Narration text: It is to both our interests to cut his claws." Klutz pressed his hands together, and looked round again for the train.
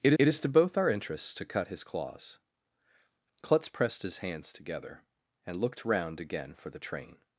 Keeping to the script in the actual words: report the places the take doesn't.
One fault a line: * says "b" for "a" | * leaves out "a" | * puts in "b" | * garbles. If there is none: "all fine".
* puts in "it"